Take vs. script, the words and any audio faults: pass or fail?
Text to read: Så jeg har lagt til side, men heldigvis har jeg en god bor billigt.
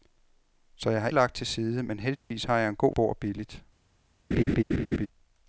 fail